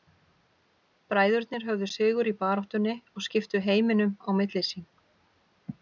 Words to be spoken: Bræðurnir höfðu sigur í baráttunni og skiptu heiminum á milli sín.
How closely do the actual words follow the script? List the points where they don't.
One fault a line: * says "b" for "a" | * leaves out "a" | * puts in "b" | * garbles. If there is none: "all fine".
all fine